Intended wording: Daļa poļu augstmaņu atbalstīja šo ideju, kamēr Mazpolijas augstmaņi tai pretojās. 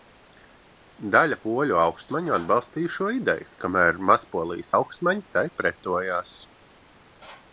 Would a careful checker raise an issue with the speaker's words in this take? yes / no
no